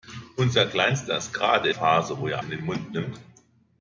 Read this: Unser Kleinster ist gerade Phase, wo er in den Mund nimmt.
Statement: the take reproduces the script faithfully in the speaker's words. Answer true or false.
true